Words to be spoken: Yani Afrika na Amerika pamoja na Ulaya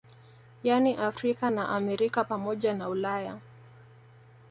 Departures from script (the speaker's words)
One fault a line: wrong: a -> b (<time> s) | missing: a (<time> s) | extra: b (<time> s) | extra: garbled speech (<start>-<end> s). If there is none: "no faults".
no faults